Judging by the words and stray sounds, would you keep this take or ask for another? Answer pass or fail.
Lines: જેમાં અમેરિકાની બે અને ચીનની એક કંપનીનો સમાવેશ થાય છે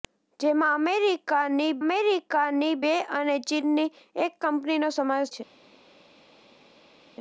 fail